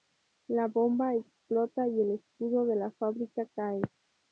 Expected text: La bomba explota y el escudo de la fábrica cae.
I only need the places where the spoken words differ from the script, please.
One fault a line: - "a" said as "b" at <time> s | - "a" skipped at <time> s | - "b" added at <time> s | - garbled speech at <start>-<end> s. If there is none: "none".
none